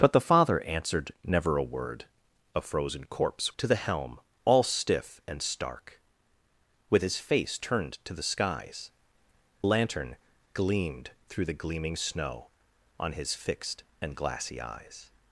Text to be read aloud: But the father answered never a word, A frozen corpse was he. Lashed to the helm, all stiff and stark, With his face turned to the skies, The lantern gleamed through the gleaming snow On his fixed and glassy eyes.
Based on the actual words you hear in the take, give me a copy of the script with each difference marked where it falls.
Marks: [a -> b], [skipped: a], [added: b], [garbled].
But the father answered never a word, A frozen corpse [skipped: was he. Lashed] to the helm, all stiff and stark, With his face turned to the skies, [skipped: The] lantern gleamed through the gleaming snow On his fixed and glassy eyes.